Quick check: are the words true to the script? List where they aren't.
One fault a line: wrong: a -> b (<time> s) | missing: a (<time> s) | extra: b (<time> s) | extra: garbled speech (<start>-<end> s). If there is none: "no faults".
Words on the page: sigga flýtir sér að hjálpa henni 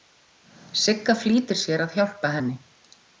no faults